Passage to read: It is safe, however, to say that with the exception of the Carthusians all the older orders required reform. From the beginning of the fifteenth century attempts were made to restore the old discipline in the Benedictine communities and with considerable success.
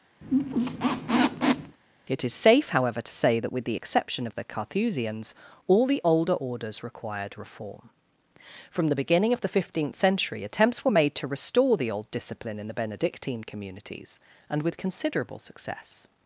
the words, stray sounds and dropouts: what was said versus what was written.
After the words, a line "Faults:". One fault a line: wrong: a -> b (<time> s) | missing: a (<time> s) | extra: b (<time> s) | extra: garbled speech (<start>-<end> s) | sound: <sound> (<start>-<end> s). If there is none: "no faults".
It is safe, however, to say that with the exception of the Carthusians all the older orders required reform. From the beginning of the fifteenth century attempts were made to restore the old discipline in the Benedictine communities and with considerable success.
Faults:
sound: squeak (0.2-1.8 s)